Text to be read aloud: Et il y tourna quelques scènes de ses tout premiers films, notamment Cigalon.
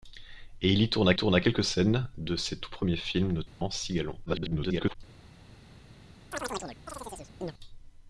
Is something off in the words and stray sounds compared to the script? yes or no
yes